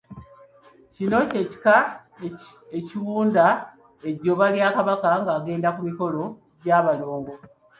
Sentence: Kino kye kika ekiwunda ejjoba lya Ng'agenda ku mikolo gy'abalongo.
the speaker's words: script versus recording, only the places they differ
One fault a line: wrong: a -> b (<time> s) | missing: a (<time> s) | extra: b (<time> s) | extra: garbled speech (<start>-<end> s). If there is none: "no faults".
extra: Kabaka (4.8 s)